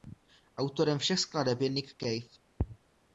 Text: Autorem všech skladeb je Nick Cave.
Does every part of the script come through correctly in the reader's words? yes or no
yes